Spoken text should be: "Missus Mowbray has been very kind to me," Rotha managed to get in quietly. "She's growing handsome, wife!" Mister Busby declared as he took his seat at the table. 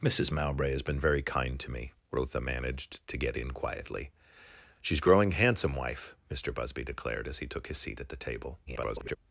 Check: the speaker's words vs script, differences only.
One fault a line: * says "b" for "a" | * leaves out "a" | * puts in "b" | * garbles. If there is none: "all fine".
* garbles